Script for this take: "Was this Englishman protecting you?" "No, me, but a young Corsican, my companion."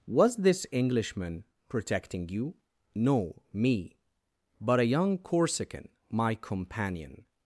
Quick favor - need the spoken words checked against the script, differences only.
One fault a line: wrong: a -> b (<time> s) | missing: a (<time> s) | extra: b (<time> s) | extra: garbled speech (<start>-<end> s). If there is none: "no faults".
no faults